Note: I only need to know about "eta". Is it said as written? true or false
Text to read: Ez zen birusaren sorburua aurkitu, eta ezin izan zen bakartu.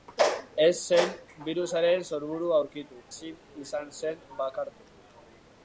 false